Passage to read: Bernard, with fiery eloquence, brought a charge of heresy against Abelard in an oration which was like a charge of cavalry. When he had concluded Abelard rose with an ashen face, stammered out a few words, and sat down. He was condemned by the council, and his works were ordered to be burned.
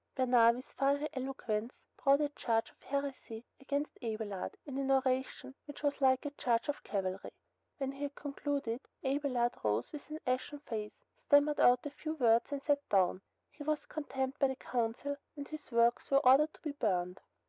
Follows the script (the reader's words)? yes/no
yes